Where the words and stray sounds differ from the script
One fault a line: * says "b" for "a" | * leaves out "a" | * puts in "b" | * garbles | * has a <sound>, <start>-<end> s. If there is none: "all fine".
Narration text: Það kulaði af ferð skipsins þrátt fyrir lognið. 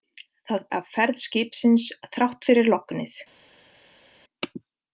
* leaves out "kulaði"